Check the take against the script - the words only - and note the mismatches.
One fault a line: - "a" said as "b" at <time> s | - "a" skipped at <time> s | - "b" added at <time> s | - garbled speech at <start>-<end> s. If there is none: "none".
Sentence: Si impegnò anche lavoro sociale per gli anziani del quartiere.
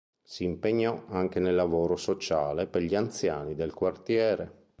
- "nel" added at 1.4 s